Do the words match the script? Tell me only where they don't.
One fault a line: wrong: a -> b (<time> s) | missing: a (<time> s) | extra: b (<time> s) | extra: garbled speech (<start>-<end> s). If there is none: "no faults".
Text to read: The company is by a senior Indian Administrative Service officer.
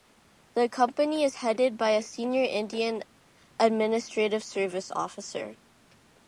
extra: headed (1.4 s)